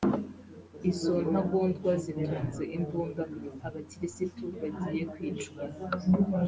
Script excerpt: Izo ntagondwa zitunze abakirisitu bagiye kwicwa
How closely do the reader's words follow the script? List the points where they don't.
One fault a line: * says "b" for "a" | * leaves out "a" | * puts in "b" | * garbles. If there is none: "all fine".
* puts in "imbunda"